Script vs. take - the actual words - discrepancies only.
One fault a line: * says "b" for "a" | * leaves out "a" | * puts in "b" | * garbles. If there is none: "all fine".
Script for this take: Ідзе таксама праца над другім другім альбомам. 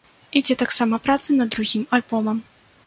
* leaves out "другім"